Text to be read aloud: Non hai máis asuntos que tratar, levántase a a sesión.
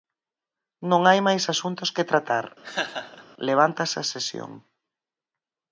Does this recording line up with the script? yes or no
no